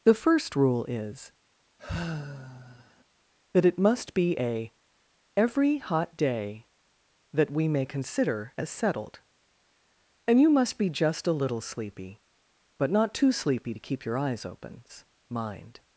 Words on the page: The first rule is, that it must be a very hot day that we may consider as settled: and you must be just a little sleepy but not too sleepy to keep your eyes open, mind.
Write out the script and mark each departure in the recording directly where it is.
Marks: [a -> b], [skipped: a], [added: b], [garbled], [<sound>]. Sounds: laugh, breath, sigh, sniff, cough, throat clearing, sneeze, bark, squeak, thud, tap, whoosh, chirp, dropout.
The first rule is, [sigh] that it must be a [very -> every] hot day that we may consider as settled: and you must be just a little sleepy but not too sleepy to keep your eyes open, mind.